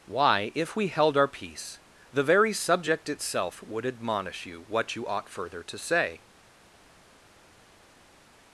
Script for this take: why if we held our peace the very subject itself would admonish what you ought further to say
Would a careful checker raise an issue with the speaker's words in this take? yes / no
yes